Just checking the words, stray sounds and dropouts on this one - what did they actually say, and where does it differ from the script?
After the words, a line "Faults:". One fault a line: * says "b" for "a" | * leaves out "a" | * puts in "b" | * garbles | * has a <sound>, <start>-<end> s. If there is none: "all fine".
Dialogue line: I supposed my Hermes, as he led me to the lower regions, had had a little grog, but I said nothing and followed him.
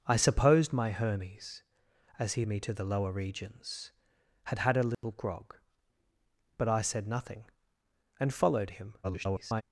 I supposed my Hermes, as he me to the lower regions, had had a little grog, but I said nothing and followed him. [garbled]
Faults:
* leaves out "led"
* has a dropout, 4.9-5.0 s
* garbles